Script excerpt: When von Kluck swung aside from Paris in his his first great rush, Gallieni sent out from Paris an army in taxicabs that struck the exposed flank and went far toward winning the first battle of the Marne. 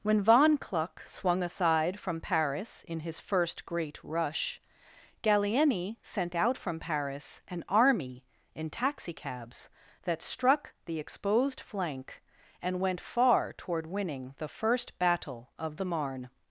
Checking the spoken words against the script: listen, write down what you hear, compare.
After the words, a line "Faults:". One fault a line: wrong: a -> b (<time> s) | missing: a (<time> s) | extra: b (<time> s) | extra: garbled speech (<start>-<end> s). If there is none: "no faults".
When von Kluck swung aside from Paris in his first great rush, Gallieni sent out from Paris an army in taxicabs that struck the exposed flank and went far toward winning the first battle of the Marne.
Faults:
missing: his (3.2 s)